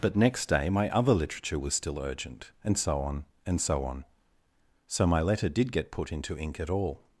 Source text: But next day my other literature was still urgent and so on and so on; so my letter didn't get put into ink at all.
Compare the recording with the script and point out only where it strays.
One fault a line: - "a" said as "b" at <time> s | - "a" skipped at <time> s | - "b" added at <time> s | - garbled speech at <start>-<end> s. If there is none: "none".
- "didn't" said as "did" at 5.5 s